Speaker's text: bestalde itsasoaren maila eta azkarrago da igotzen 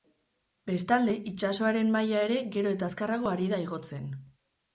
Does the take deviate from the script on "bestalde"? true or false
false